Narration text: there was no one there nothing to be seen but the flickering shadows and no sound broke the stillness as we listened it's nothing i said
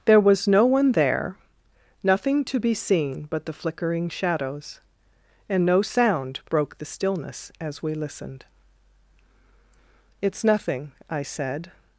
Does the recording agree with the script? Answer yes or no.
yes